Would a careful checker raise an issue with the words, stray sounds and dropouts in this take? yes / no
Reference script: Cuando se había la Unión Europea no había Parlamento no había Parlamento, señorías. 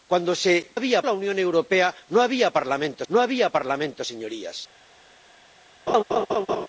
yes